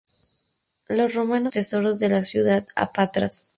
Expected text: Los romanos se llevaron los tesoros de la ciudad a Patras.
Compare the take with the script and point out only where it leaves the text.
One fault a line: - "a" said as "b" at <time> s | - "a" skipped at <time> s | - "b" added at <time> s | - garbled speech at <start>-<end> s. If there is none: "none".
- "se llevaron los" skipped at 1.5 s